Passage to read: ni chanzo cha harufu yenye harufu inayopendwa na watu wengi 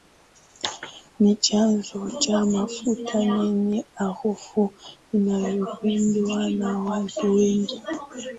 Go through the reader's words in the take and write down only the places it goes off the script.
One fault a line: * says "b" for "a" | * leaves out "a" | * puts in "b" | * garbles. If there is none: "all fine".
* says "mafuta" for "harufu"